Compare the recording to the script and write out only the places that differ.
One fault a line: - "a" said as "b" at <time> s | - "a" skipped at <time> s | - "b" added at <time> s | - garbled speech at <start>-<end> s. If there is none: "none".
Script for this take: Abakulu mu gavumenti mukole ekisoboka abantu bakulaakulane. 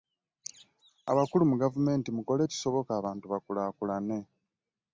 none